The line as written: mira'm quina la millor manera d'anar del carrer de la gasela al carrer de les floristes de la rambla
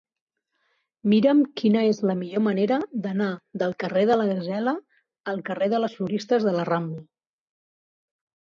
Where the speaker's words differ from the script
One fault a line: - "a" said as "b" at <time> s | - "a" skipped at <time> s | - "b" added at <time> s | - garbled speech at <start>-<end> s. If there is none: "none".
- "és" added at 1.9 s